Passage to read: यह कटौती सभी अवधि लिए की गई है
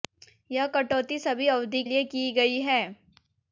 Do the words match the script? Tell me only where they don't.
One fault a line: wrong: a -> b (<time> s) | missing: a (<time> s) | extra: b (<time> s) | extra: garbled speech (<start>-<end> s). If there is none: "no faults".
no faults